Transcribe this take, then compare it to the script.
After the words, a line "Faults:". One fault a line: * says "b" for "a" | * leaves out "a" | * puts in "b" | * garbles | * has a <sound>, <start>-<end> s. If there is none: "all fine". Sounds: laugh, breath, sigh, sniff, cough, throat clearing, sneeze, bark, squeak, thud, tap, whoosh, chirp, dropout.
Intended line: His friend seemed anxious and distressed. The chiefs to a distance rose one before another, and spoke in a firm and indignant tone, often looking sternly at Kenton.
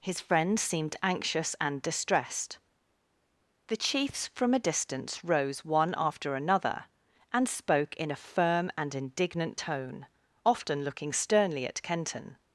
His friend seemed anxious and distressed. The chiefs from a distance rose one after another, and spoke in a firm and indignant tone, often looking sternly at Kenton.
Faults:
* says "from" for "to"
* says "after" for "before"